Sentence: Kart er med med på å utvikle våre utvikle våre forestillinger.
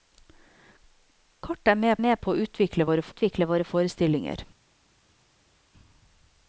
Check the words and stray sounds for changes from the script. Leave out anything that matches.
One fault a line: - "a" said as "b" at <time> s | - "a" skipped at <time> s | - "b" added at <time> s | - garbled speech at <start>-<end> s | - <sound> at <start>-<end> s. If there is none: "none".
none